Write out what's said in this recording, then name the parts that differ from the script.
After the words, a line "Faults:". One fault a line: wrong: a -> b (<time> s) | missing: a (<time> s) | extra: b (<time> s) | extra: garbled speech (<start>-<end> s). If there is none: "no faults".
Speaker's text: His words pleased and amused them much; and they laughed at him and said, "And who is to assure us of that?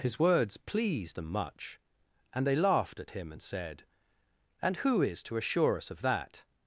His words pleased them much; and they laughed at him and said, "And who is to assure us of that?
Faults:
missing: and amused (1.2 s)